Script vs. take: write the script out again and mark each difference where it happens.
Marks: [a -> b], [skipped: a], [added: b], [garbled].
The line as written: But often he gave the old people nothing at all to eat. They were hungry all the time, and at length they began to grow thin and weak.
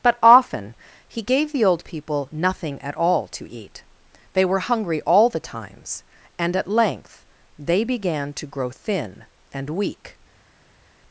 But often he gave the old people nothing at all to eat. They were hungry all the [time, -> times] and at length they began to grow thin and weak.